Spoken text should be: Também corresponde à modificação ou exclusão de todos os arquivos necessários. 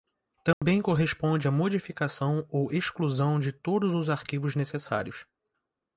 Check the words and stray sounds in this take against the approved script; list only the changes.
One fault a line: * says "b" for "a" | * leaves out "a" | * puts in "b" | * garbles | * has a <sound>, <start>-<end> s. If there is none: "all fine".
* has a dropout, 0.5-0.6 s